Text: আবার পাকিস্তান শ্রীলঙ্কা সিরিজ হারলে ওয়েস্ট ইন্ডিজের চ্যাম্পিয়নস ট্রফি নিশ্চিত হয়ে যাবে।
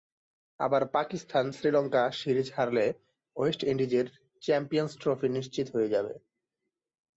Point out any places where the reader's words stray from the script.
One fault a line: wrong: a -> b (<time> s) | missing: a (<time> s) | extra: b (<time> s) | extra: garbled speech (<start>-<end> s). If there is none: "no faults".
no faults